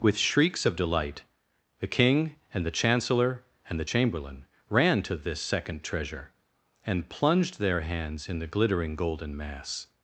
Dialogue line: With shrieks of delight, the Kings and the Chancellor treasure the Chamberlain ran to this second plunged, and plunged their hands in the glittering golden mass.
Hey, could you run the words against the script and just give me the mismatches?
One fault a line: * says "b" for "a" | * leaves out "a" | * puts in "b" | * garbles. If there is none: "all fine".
* says "King" for "Kings"
* says "and" for "treasure"
* says "treasure" for "plunged"